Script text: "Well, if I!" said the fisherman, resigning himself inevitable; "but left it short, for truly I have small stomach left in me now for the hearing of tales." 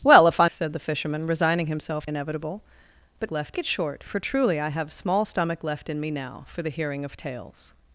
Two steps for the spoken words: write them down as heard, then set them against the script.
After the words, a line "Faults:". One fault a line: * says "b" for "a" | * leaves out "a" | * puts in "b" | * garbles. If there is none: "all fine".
"Well, if I!" said the fisherman, resigning himself inevitable; "but left it short, for truly I have small stomach left in me now for the hearing of tales."
Faults:
all fine